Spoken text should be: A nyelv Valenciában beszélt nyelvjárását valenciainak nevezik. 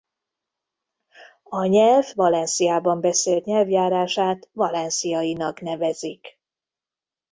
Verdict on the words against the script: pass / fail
pass